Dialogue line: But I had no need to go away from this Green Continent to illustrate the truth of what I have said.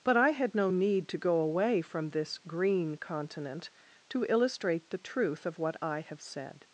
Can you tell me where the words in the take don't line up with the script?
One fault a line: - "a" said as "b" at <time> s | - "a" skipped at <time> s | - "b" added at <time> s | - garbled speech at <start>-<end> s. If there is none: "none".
none